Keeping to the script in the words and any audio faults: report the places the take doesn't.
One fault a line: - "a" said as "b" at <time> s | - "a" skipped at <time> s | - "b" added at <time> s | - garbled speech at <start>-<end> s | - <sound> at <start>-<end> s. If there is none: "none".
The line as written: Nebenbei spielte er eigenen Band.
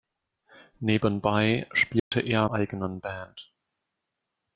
- dropout at 2.0-2.1 s